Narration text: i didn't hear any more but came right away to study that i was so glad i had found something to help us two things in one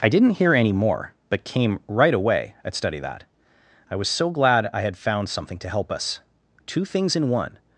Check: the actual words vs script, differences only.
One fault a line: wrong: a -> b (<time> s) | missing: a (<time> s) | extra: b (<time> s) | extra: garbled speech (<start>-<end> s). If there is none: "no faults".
wrong: to -> at (2.6 s)